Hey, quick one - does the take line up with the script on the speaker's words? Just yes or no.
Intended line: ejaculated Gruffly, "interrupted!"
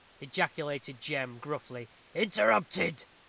no